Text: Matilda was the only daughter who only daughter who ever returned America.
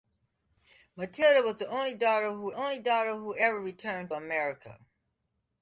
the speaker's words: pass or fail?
pass